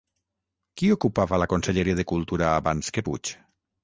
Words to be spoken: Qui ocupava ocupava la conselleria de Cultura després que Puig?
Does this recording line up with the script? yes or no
no